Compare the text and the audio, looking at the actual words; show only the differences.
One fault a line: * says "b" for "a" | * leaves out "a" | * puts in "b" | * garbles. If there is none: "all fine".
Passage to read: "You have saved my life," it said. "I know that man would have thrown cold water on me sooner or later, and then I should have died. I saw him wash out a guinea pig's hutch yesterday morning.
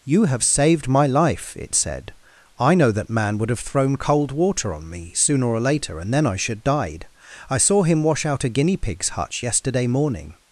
* leaves out "have"